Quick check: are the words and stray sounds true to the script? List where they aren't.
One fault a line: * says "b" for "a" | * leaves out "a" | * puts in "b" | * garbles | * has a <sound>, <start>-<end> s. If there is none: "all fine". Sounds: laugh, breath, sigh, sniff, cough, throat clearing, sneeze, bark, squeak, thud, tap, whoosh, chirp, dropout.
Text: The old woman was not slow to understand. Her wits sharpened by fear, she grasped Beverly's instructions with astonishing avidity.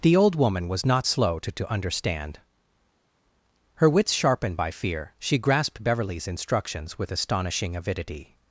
* puts in "to"